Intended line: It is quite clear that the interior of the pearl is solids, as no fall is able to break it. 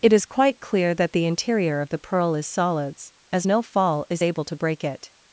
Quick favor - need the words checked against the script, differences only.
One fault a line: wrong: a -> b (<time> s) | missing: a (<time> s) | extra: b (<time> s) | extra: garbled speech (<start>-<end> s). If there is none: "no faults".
no faults